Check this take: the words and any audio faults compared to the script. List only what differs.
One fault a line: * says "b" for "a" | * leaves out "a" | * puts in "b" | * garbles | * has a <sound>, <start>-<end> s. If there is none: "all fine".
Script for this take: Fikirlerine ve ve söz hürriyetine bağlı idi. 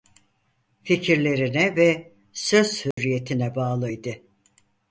* leaves out "ve"
* has a dropout, 2.9-3.0 s